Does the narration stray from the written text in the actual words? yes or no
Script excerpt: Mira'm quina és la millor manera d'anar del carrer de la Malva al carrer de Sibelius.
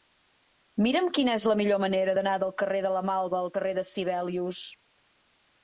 no